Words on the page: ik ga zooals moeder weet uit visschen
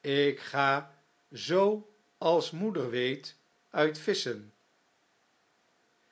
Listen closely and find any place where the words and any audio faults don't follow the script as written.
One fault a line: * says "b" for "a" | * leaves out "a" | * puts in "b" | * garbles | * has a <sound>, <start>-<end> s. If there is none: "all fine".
all fine